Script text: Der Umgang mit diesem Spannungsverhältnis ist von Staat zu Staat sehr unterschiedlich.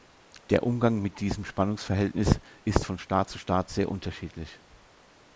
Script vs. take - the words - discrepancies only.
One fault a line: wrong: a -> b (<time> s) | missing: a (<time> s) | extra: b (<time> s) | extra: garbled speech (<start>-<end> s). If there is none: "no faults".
no faults